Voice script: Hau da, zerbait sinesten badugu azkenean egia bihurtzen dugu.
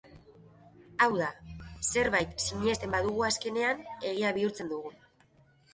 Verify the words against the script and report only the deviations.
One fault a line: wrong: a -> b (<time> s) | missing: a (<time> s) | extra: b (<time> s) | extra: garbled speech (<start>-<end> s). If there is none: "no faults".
no faults